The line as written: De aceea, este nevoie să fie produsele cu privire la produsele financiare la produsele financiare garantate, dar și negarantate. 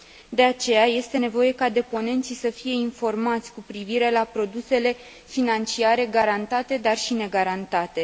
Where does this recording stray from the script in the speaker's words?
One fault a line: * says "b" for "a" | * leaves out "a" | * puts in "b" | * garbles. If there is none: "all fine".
* puts in "ca deponenții"
* says "informați" for "produsele"
* leaves out "la produsele financiare"